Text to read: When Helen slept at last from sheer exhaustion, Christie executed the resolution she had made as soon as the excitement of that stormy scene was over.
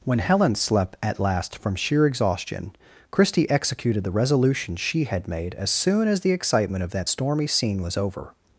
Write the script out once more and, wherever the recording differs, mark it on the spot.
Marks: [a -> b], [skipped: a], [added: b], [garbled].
When Helen slept at last from sheer exhaustion, Christie executed the resolution she had made as soon as the excitement of that stormy scene was over.